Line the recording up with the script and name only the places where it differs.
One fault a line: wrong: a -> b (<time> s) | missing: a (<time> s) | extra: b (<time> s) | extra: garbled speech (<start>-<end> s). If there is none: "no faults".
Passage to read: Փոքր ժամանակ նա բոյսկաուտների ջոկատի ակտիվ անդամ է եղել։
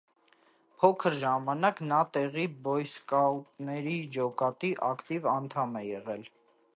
extra: տեղի (2.2 s)